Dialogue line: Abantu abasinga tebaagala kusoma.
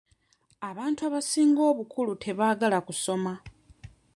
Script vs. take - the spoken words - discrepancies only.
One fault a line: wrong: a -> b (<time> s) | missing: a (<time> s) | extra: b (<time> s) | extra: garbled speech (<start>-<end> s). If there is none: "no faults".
extra: obukulu (1.7 s)